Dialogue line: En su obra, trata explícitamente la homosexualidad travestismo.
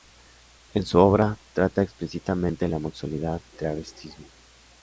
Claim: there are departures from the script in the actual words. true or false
false